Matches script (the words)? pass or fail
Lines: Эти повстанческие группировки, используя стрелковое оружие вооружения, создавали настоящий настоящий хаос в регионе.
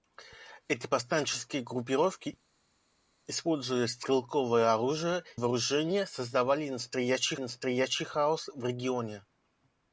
pass